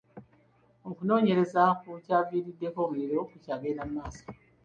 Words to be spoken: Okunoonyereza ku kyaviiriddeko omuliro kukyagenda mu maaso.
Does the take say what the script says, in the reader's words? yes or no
yes